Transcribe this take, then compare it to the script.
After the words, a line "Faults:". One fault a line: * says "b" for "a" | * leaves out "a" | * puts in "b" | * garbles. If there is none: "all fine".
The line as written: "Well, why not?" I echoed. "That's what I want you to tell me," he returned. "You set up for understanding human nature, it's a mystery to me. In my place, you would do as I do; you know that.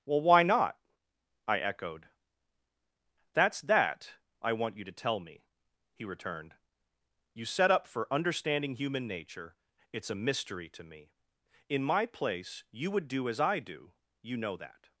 "Well, why not?" I echoed. "That's that I want you to tell me," he returned. "You set up for understanding human nature, it's a mystery to me. In my place, you would do as I do; you know that.
Faults:
* says "that" for "what"